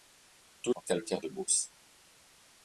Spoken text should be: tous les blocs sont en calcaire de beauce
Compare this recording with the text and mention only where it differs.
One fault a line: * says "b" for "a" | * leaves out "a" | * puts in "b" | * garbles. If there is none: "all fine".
* leaves out "les blocs sont"